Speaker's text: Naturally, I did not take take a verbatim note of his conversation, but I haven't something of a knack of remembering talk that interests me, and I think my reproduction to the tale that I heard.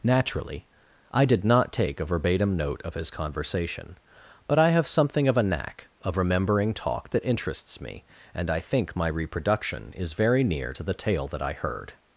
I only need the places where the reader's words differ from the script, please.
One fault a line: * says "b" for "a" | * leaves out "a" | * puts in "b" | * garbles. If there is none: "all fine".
* leaves out "take"
* says "have" for "haven't"
* puts in "is very near"